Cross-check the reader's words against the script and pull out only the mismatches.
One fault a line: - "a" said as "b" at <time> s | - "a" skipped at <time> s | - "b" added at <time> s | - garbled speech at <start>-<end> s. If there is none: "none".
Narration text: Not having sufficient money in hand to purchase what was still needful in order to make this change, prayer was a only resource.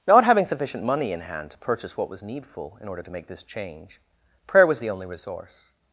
- "still" skipped at 2.2 s
- "a" said as "the" at 4.8 s